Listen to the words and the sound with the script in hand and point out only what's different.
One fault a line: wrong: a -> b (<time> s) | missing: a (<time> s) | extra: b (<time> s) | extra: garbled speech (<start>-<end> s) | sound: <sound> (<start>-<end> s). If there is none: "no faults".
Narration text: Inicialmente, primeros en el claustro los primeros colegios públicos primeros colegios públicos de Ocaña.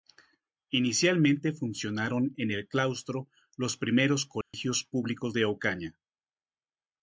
wrong: primeros -> funcionaron (1.5 s)
sound: dropout (4.4-4.5 s)
missing: primeros colegios públicos (5.3 s)